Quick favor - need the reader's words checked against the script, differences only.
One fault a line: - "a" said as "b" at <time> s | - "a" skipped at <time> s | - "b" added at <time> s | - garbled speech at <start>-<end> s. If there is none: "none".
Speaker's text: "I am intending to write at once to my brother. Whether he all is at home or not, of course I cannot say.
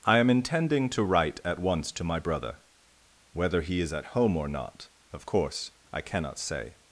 - "all" skipped at 3.8 s